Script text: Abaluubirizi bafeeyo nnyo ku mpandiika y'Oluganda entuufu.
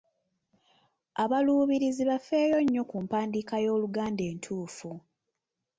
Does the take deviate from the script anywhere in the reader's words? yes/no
no